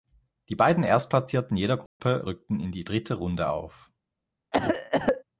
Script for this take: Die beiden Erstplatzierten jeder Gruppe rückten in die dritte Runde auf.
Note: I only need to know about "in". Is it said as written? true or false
true